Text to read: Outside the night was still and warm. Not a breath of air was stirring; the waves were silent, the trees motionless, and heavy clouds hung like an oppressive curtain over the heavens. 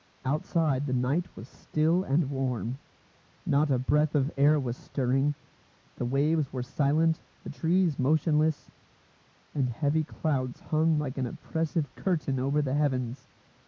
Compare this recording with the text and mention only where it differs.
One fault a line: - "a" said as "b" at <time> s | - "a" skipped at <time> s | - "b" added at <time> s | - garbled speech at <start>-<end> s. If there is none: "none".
none